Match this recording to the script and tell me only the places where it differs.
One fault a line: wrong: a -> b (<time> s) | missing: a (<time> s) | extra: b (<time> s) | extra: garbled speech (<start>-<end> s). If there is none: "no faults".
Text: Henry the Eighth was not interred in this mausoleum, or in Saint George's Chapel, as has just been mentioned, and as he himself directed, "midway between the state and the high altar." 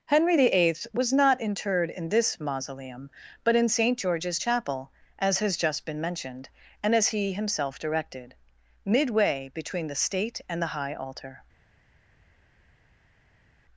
wrong: or -> but (3.4 s)